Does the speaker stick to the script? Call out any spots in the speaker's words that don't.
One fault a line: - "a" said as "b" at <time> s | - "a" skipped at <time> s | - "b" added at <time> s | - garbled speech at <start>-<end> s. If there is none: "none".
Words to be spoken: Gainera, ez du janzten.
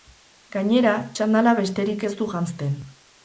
- "txandala besterik" added at 1.2 s